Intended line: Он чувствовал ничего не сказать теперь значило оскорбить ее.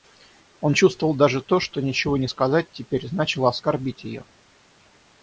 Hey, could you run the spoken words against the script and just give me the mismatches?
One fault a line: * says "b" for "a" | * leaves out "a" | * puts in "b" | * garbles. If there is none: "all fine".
* puts in "даже то что"